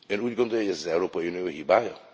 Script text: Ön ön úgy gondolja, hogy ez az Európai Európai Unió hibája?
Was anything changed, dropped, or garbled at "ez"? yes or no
no